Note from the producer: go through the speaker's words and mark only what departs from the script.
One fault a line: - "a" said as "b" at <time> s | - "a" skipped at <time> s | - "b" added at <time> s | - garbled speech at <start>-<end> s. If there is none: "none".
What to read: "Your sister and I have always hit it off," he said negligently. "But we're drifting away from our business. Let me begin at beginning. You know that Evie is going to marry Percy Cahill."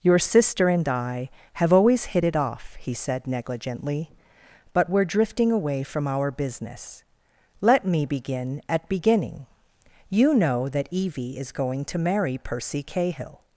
none